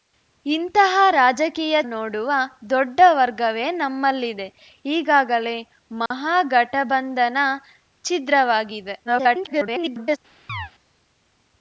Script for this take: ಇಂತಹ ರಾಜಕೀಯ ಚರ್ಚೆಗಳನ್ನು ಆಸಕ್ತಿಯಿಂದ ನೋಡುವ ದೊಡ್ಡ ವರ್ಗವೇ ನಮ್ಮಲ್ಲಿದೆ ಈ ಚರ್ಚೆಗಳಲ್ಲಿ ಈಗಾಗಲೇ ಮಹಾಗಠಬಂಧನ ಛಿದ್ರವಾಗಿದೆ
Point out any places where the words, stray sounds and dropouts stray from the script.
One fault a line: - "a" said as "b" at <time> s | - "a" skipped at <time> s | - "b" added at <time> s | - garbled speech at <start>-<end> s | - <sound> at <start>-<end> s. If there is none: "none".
- "ಚರ್ಚೆಗಳನ್ನು ಆಸಕ್ತಿಯಿಂದ" skipped at 1.8 s
- "ಈ ಚರ್ಚೆಗಳಲ್ಲಿ" skipped at 4.5 s
- dropout at 6.1-6.1 s
- garbled speech at 9.0-10.2 s
- chirp at 10.5-10.7 s